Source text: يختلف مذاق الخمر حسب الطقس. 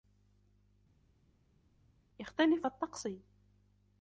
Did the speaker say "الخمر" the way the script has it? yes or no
no